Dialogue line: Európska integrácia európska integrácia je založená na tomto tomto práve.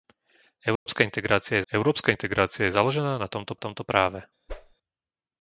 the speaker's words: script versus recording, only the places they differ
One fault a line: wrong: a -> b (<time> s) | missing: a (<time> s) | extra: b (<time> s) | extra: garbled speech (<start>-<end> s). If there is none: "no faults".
no faults